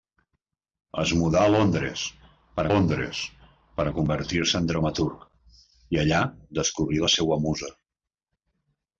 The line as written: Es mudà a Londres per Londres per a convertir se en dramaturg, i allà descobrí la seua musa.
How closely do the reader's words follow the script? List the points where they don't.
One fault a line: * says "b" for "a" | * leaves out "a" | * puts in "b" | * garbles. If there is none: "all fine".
all fine